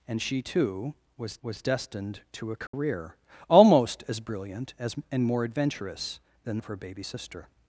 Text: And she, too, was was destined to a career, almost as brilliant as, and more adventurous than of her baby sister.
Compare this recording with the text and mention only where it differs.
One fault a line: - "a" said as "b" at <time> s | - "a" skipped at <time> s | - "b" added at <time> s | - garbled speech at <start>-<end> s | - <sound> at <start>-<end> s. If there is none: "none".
- dropout at 2.7-2.7 s